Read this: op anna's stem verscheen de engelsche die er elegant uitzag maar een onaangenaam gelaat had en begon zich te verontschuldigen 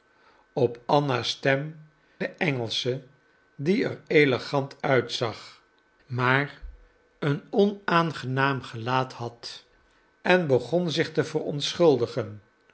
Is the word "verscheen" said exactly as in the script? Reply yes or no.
no